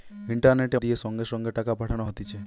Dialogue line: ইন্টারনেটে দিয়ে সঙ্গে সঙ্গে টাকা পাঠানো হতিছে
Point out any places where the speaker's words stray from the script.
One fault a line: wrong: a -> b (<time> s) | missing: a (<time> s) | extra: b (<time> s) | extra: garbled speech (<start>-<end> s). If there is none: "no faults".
no faults